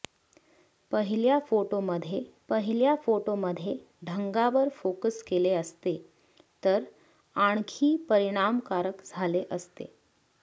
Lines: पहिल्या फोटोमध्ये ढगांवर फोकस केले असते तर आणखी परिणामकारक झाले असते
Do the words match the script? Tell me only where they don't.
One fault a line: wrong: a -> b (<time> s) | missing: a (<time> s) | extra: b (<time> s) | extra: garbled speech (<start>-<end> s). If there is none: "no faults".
extra: पहिल्या फोटोमध्ये (2.5 s)